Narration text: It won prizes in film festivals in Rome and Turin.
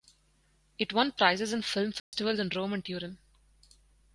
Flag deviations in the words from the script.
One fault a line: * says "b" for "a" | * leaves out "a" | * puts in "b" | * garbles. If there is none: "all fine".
all fine